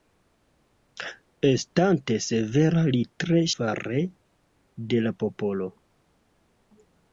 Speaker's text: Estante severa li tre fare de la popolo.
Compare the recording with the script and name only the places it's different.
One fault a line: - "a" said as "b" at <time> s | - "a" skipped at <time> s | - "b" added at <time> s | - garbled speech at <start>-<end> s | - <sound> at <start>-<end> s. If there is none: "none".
none